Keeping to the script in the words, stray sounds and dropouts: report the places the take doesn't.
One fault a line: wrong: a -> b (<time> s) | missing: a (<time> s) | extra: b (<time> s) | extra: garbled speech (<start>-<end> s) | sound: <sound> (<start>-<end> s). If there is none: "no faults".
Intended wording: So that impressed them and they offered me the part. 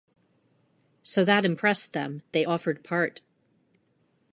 missing: and (2.2 s)
missing: me the (2.8 s)